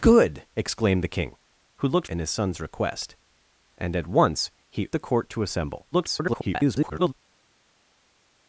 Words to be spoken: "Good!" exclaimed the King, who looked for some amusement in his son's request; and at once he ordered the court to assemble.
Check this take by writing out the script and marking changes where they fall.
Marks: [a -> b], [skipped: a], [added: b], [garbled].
"Good!" exclaimed the King, who looked [skipped: for some amusement] in his son's request; and at once he [skipped: ordered] the court to assemble. [garbled]